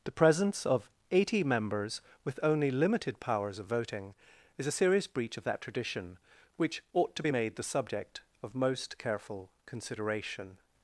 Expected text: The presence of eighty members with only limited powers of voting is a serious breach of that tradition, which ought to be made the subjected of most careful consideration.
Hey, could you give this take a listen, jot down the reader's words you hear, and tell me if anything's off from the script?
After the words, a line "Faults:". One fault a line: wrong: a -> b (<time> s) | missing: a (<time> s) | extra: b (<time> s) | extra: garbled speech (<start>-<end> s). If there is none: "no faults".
The presence of eighty members with only limited powers of voting is a serious breach of that tradition, which ought to be made the subject of most careful consideration.
Faults:
wrong: subjected -> subject (7.6 s)